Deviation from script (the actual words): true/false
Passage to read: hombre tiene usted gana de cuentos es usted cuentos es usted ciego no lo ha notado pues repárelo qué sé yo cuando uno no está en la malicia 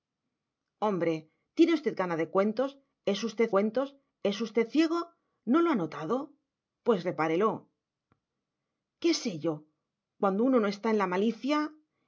false